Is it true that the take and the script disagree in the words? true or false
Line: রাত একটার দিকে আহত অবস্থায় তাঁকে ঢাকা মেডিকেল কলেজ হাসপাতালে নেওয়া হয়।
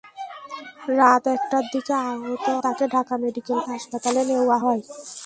true